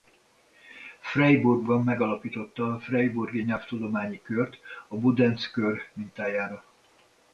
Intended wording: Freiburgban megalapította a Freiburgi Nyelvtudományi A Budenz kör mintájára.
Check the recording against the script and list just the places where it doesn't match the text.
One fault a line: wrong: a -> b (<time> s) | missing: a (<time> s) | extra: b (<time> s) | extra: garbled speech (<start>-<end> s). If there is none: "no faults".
extra: Kört (4.2 s)